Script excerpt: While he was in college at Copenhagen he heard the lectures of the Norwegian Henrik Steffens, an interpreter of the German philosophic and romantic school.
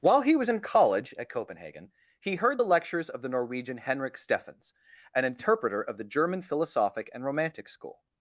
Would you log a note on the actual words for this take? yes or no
no